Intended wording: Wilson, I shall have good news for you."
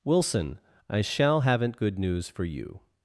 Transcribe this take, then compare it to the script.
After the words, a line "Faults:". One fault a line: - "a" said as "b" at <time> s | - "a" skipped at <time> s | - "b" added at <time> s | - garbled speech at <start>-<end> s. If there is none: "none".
Wilson, I shall haven't good news for you."
Faults:
- "have" said as "haven't" at 1.4 s